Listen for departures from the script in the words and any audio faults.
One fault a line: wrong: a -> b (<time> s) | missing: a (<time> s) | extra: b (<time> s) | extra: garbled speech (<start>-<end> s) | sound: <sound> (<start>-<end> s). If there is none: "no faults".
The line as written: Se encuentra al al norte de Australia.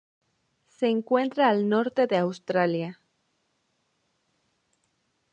missing: al (1.7 s)